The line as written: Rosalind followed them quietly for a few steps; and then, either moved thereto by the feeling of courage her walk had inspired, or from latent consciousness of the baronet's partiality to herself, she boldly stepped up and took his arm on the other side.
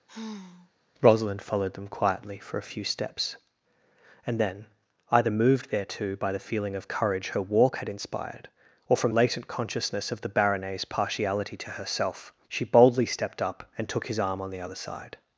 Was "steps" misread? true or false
false